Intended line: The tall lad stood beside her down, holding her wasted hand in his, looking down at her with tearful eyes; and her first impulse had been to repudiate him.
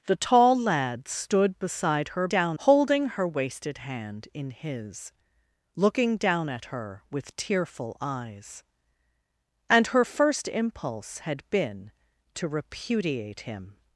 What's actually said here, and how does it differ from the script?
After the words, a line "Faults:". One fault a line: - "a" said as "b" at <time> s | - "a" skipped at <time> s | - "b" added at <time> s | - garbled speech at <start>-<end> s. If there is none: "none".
The tall lad stood beside her down, holding her wasted hand in his, looking down at her with tearful eyes; and her first impulse had been to repudiate him.
Faults:
none